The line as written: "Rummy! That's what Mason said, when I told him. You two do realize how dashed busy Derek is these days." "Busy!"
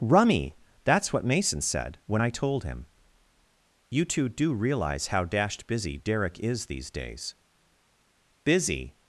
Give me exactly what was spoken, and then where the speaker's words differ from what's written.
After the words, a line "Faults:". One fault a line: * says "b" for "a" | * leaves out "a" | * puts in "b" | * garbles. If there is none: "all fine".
"Rummy! That's what Mason said, when I told him. You two do realize how dashed busy Derek is these days." "Busy!"
Faults:
all fine